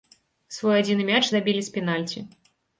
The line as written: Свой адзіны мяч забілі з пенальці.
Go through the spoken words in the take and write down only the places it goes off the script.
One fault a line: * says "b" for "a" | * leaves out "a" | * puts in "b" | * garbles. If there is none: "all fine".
all fine